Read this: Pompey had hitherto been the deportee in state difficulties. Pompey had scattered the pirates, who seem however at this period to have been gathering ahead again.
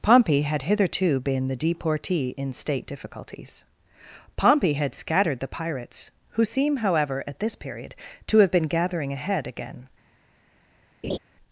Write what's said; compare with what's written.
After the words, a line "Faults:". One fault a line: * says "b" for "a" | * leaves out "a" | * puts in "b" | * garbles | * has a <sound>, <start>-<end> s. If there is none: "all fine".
Pompey had hitherto been the deportee in state difficulties. Pompey had scattered the pirates, who seem however at this period to have been gathering ahead again.
Faults:
* has a laugh, 11.0-11.2 s